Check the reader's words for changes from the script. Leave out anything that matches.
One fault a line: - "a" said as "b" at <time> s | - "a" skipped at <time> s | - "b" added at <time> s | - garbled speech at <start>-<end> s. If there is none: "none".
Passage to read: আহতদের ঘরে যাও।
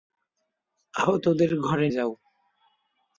none